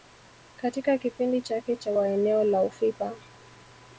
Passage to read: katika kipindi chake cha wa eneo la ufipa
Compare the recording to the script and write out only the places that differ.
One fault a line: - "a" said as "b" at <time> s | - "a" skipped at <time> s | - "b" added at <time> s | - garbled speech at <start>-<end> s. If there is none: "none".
none